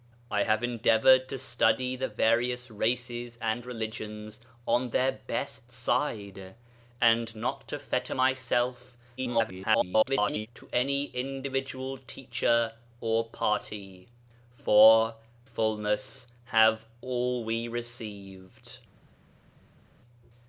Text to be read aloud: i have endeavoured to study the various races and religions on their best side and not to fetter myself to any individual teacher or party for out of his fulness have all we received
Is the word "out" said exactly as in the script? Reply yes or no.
no